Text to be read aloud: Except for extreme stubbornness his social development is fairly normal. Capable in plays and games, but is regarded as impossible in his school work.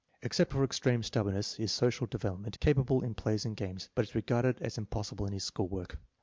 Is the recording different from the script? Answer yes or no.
yes